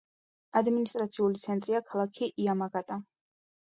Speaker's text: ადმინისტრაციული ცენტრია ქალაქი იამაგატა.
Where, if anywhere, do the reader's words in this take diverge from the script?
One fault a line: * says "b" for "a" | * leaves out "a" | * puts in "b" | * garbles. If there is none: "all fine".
all fine